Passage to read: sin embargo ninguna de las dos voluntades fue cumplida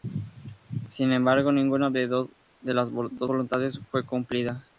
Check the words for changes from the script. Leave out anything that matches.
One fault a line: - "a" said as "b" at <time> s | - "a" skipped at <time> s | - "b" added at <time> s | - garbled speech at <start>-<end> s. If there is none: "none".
none